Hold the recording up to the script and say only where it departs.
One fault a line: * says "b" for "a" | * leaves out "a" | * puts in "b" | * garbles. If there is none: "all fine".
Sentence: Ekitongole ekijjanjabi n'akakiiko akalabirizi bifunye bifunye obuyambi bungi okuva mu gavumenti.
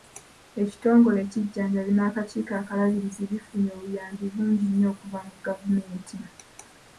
* leaves out "bifunye"
* puts in "nnyo"